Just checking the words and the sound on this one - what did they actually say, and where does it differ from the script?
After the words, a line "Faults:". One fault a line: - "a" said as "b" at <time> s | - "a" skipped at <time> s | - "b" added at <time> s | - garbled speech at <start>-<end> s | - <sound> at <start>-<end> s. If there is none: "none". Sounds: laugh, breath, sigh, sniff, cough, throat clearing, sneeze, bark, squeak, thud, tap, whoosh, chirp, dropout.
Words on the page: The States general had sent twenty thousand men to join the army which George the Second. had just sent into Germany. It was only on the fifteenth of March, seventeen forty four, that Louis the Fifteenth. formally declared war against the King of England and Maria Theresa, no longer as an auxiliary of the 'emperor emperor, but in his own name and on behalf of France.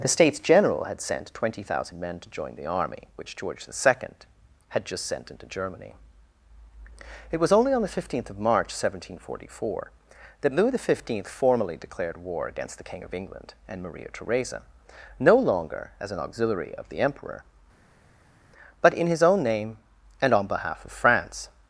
The States general had sent twenty thousand men to join the army which George the Second. had just sent into Germany. It was only on the fifteenth of March, seventeen forty four, that Louis the Fifteenth. formally declared war against the King of England and Maria Theresa, no longer as an auxiliary of the 'emperor, but in his own name and on behalf of France.
Faults:
- "emperor" skipped at 17.4 s